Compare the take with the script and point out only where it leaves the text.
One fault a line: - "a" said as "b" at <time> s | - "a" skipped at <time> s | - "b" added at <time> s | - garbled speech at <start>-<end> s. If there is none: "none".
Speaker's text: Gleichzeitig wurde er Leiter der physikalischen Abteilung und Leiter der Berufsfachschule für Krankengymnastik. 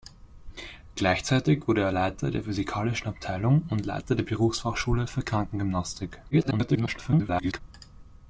- garbled speech at 6.3-7.6 s